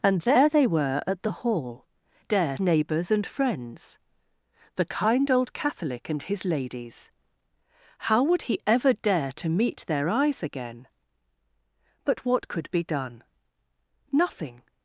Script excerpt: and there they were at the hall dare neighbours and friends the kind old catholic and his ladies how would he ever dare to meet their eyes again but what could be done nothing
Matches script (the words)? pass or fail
pass